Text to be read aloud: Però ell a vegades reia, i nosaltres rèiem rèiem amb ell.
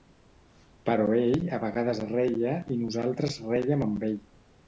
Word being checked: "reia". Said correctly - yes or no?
yes